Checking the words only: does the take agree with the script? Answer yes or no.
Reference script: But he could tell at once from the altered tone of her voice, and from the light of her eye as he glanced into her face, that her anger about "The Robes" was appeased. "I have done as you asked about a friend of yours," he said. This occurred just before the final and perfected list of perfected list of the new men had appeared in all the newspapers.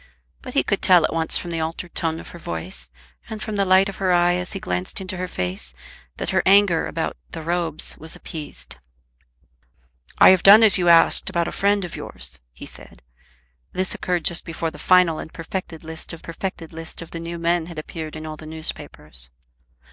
yes